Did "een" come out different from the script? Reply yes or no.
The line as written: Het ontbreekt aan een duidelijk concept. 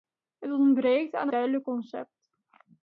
yes